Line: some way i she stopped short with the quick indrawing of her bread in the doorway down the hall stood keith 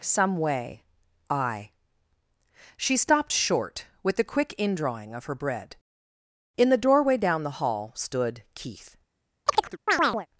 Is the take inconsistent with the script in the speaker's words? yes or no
no